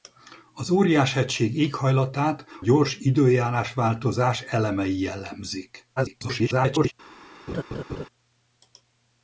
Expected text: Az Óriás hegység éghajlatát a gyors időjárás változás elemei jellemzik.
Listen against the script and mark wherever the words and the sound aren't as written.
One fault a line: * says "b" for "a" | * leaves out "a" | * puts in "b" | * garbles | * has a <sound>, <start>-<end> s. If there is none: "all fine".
* leaves out "a"
* garbles
* has a laugh, 7.5-8.1 s